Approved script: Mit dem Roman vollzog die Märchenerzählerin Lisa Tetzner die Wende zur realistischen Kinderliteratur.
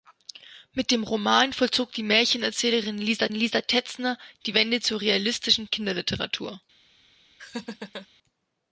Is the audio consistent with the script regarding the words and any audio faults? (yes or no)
no